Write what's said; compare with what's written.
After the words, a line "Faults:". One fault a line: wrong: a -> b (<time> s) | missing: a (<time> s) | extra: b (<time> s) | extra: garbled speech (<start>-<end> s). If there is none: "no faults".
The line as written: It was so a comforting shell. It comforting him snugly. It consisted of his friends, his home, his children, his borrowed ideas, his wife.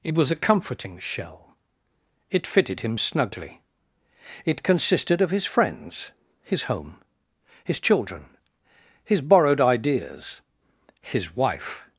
It was a comforting shell. It fitted him snugly. It consisted of his friends, his home, his children, his borrowed ideas, his wife.
Faults:
missing: so (0.3 s)
wrong: comforting -> fitted (2.5 s)